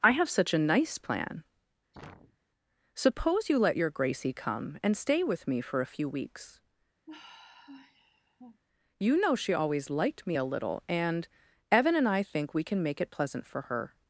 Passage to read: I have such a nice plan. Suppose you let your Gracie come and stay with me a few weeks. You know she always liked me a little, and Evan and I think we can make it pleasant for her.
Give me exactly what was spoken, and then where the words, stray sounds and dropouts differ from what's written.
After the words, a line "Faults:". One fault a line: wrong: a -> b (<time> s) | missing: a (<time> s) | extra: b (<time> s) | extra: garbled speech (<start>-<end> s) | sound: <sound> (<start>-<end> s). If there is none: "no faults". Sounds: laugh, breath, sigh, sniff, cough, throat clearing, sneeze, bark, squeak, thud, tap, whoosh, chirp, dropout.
I have such a nice plan. Suppose you let your Gracie come and stay with me for a few weeks. You know she always liked me a little, and Evan and I think we can make it pleasant for her.
Faults:
sound: sneeze (1.9-2.4 s)
extra: for (5.6 s)
sound: sigh (7.1-8.6 s)